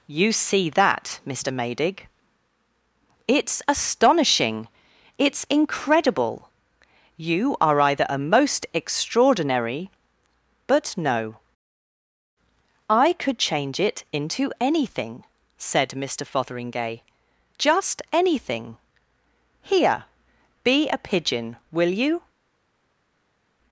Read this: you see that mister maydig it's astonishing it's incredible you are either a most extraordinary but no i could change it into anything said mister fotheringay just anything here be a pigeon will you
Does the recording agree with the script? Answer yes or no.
yes